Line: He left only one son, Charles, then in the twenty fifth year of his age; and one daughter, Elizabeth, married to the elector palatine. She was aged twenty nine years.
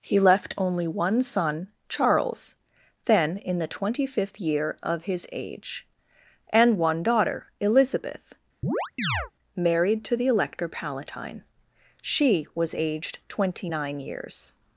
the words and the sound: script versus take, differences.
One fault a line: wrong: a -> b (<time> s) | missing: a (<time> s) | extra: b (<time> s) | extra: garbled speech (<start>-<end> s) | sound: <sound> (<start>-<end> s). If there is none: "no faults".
sound: chirp (8.6-9.3 s)